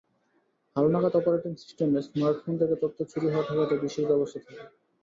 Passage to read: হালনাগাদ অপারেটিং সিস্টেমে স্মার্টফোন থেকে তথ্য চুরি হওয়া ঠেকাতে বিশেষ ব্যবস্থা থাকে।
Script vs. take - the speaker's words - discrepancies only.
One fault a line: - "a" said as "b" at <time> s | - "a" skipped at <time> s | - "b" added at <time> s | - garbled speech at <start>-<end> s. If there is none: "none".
none